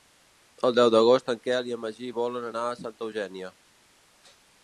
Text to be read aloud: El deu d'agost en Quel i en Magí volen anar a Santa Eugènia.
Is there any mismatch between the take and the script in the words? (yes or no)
no